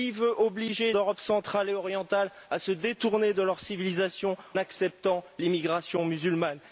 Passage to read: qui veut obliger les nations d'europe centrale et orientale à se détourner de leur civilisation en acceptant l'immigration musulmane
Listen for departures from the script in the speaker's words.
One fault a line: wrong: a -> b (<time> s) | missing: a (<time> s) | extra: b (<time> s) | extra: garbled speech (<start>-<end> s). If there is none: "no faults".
missing: les nations (0.9 s)
missing: en (4.4 s)